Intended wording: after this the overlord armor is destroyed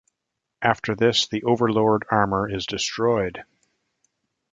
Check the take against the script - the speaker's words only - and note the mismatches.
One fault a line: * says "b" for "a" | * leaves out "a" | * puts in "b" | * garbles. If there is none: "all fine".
all fine